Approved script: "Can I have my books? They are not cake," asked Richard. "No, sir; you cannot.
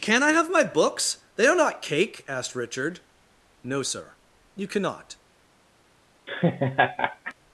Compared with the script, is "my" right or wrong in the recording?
right